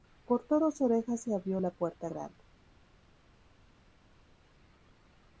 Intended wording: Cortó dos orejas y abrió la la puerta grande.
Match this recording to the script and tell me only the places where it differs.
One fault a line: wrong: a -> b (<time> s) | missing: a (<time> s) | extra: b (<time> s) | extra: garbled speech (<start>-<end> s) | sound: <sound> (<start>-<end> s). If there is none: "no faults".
missing: la (1.7 s)